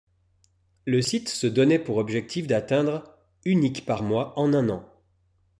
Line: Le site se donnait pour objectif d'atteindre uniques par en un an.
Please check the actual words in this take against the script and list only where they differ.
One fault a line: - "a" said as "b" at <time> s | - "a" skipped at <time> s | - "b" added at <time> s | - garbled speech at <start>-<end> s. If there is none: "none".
- "mois" added at 4.0 s